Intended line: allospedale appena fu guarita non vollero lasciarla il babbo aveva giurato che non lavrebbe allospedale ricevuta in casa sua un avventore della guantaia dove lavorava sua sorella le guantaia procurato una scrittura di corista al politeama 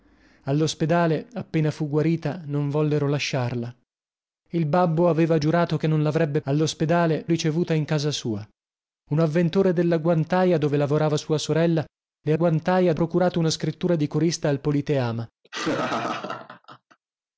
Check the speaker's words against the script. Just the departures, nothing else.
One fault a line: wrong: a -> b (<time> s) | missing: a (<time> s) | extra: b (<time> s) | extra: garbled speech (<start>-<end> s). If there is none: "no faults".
no faults